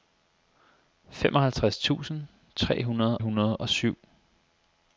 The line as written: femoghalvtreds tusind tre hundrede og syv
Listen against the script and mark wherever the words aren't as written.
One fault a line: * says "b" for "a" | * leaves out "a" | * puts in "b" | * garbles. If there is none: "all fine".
* puts in "hundrede"